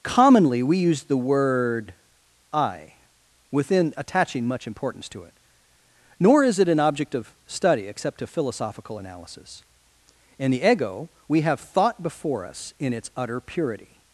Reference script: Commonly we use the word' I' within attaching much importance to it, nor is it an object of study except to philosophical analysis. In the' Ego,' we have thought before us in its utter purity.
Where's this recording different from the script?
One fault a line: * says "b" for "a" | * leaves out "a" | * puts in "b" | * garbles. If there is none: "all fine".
all fine